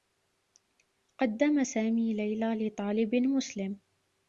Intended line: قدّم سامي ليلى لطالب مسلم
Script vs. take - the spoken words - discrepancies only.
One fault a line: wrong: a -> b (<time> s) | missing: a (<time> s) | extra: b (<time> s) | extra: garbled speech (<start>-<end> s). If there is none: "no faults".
no faults